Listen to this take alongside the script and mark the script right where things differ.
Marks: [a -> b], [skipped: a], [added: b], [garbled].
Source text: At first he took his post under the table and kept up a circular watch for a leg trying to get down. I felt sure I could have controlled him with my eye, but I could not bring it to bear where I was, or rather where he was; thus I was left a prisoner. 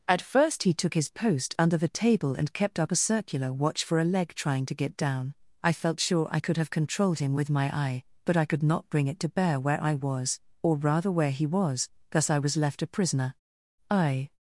At first he took his post under the table and kept up a circular watch for a leg trying to get down. I felt sure I could have controlled him with my eye, but I could not bring it to bear where I was, or rather where he was; thus I was left a prisoner. [added: I]